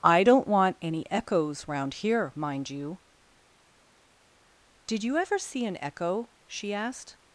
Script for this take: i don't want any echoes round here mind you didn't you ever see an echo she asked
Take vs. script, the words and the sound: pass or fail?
fail